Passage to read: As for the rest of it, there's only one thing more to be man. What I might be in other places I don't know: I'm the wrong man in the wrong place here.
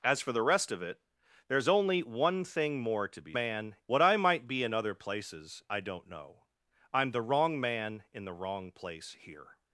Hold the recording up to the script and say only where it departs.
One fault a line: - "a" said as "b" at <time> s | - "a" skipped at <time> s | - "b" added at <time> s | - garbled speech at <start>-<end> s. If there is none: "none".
none